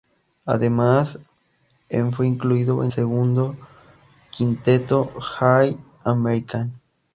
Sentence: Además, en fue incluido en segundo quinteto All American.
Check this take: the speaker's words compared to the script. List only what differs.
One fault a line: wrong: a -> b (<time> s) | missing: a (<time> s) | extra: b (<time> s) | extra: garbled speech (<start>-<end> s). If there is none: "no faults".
no faults